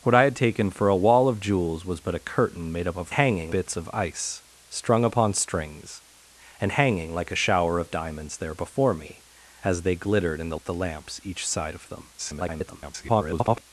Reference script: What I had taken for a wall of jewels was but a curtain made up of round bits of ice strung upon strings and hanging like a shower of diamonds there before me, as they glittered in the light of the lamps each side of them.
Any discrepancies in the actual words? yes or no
yes